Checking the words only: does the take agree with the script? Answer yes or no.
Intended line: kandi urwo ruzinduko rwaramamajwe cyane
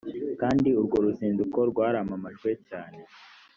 yes